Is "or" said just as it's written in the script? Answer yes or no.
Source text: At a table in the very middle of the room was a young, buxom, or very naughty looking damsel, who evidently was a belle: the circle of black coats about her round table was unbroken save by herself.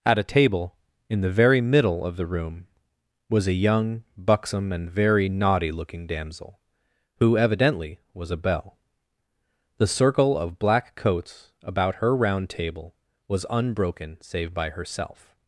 no